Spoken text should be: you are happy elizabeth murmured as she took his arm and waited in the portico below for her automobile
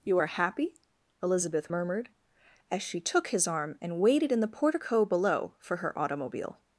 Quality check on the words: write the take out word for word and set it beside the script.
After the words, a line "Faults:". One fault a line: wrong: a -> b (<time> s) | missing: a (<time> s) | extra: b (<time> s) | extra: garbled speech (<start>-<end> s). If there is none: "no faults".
you are happy elizabeth murmured as she took his arm and waited in the portico below for her automobile
Faults:
no faults